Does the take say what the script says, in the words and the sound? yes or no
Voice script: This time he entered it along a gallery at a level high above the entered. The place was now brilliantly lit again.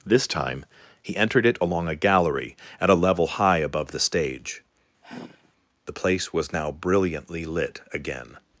no